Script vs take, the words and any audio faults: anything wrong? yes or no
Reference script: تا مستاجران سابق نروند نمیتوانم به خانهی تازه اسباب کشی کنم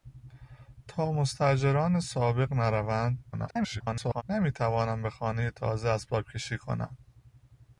yes